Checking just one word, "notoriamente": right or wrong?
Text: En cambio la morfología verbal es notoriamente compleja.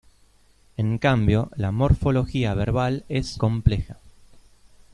wrong